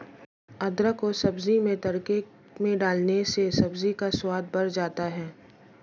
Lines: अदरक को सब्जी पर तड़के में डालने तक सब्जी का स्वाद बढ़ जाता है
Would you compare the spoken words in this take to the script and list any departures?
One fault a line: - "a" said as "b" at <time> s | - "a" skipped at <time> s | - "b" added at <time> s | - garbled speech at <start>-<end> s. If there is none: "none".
- "पर" said as "में" at 1.6 s
- "तक" said as "से" at 3.3 s